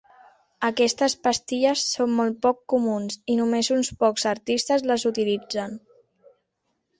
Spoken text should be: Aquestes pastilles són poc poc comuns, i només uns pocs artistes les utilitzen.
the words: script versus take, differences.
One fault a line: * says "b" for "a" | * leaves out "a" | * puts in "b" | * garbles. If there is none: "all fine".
* says "molt" for "poc"